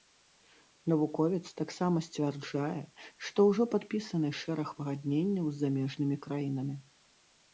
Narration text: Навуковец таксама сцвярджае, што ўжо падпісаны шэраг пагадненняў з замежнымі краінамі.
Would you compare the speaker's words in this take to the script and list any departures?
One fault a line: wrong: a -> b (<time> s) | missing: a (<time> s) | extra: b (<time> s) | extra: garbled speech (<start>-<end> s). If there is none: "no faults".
no faults